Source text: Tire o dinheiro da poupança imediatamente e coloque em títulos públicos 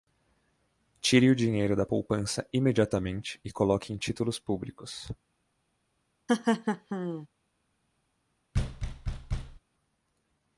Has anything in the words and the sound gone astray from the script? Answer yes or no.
yes